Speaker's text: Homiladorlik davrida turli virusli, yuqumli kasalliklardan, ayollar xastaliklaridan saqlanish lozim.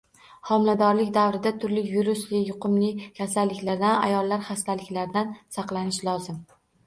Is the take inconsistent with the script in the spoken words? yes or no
no